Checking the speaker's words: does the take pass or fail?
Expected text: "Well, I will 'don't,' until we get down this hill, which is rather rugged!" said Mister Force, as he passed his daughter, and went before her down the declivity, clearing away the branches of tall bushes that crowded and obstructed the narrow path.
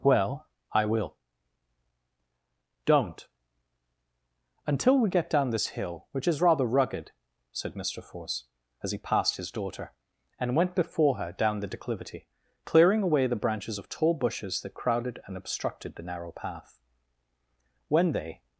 fail